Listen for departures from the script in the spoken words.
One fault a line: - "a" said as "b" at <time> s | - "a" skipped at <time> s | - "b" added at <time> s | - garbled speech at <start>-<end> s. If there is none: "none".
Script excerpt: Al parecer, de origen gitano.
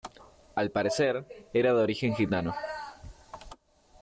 - "era" added at 1.5 s